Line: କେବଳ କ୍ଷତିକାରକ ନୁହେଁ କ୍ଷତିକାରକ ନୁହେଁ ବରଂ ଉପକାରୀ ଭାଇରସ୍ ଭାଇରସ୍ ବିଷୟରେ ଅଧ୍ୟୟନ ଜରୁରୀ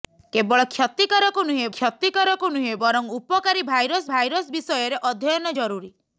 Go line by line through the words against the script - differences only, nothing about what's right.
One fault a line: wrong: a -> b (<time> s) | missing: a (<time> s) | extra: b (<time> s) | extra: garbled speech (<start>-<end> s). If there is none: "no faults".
no faults